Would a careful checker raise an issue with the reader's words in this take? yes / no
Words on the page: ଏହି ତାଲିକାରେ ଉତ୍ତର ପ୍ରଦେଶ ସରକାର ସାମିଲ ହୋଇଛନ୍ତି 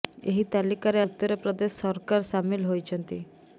no